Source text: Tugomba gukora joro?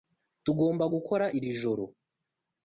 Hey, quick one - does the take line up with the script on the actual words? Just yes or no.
no